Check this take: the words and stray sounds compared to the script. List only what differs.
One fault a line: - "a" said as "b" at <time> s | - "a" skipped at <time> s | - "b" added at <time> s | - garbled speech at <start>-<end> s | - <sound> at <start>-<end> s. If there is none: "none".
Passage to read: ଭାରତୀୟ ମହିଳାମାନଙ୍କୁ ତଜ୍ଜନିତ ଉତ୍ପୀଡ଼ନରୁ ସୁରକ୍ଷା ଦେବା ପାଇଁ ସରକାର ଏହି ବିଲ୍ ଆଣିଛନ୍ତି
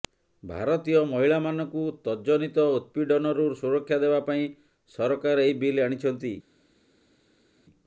none